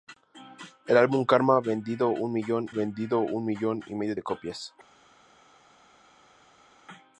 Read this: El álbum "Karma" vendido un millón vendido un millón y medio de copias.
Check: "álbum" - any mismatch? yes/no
no